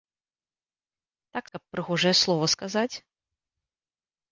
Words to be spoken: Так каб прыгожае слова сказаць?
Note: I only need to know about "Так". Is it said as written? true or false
true